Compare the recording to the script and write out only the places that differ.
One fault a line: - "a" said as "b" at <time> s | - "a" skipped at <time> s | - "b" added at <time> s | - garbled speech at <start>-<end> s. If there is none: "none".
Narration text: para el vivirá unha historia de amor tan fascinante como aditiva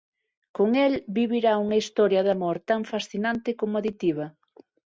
- "para" said as "con" at 0.6 s